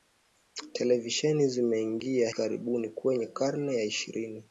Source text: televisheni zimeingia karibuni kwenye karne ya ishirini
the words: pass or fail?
pass